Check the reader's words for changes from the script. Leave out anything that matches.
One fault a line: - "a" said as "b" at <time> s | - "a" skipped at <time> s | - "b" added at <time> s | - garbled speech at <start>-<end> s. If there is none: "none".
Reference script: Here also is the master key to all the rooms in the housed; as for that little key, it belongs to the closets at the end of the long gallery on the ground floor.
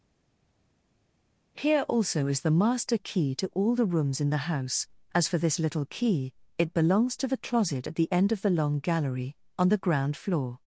- "housed" said as "house" at 4.5 s
- "that" said as "this" at 5.4 s
- "closets" said as "closet" at 7.4 s